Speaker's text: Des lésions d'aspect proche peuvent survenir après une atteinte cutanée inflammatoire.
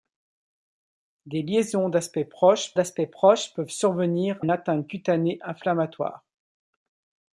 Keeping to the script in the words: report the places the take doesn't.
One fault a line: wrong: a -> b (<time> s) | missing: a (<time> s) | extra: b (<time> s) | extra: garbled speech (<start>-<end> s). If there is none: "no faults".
extra: d'aspect proche (2.7 s)
missing: après (4.4 s)